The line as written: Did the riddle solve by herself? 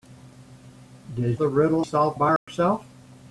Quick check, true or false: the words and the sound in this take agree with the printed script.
false